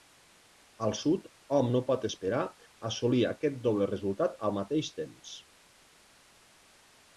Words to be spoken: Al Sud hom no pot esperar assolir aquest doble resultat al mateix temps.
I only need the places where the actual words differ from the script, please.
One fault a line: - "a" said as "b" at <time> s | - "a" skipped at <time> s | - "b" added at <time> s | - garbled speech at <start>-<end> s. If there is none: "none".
none